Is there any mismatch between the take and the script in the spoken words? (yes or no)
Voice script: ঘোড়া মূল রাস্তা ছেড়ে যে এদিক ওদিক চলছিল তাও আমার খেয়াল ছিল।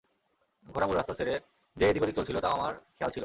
no